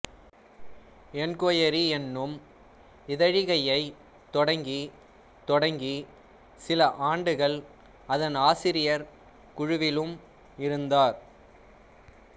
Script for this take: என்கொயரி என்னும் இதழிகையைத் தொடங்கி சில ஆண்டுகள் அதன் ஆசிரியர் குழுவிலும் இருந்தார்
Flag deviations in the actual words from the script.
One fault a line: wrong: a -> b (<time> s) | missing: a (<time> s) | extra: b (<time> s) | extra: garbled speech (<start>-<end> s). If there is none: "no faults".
extra: தொடங்கி (5.5 s)